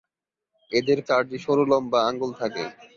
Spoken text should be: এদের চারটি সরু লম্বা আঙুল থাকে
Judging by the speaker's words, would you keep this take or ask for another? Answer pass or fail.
pass